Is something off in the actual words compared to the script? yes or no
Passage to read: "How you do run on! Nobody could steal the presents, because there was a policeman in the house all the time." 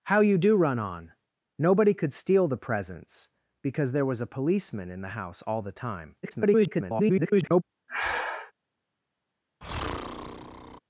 yes